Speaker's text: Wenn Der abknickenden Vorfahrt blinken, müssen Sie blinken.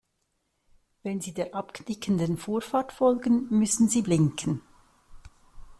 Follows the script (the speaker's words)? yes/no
no